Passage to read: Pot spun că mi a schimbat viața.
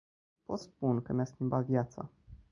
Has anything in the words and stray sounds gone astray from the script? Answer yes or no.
no